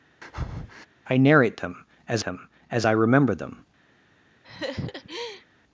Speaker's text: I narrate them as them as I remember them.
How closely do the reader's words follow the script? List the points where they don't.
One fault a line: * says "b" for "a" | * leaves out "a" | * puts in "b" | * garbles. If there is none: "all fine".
all fine